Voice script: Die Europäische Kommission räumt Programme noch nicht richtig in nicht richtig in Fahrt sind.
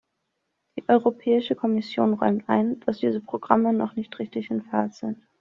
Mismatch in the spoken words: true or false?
true